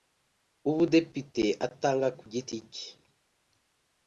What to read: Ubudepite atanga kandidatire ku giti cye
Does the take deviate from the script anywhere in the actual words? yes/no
yes